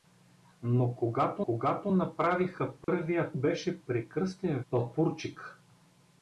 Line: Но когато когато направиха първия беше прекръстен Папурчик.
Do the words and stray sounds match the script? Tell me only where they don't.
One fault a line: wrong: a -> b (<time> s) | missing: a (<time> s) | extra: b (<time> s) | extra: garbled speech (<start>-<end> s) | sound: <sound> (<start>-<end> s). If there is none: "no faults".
sound: dropout (2.8-2.9 s)